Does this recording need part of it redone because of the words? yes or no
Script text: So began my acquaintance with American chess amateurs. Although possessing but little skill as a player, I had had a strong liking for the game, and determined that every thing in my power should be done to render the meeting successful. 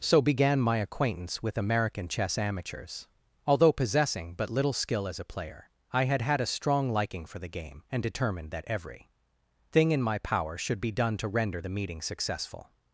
no